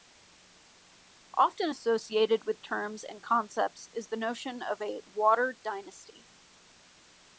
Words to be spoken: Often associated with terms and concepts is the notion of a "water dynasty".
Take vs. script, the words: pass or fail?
pass